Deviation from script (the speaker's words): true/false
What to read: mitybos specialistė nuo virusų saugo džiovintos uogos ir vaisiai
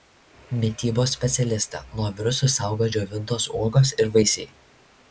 false